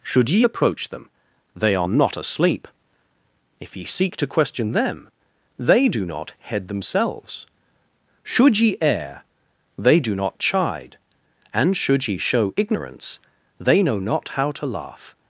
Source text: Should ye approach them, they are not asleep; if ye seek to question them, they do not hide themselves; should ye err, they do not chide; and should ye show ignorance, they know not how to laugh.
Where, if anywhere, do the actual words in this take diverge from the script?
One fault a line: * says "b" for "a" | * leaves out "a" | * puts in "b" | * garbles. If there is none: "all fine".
* says "head" for "hide"